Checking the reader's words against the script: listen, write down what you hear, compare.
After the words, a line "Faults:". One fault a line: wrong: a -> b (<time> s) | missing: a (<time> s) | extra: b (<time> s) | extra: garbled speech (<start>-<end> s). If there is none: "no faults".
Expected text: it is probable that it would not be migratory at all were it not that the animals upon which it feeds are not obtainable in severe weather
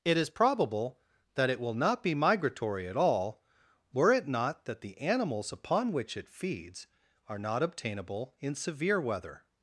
it is probable that it will not be migratory at all were it not that the animals upon which it feeds are not obtainable in severe weather
Faults:
wrong: would -> will (1.6 s)